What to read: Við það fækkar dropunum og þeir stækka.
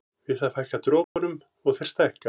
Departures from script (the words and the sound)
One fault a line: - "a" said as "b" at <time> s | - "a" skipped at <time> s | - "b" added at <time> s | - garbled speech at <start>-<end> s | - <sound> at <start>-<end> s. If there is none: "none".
- dropout at 1.0-1.2 s